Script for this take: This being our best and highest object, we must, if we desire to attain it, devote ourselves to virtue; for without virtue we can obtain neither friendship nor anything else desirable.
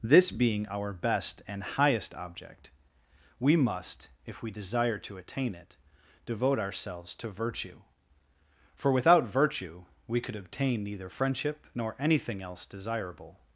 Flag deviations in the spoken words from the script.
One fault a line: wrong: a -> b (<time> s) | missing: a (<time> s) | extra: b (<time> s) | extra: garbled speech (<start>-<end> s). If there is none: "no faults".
wrong: can -> could (10.2 s)